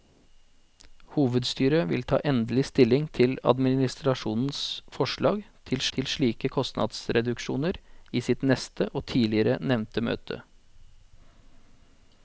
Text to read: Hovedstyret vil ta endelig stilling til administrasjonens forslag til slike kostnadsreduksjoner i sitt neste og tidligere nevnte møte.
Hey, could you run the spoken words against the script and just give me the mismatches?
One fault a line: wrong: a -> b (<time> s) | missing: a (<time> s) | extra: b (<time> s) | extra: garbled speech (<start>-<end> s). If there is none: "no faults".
extra: til (6.0 s)